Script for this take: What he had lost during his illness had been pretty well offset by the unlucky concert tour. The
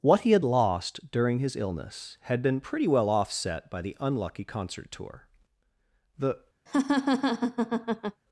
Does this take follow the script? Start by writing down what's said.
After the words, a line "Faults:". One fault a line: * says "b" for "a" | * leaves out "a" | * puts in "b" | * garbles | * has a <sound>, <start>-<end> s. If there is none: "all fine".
What he had lost during his illness had been pretty well offset by the unlucky concert tour. The
Faults:
* has a laugh, 6.7-8.2 s